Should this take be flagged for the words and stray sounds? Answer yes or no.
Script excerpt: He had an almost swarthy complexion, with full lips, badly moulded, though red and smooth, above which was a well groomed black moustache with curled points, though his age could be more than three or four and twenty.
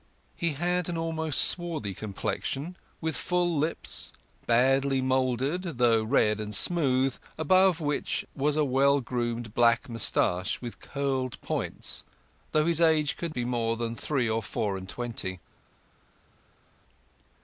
no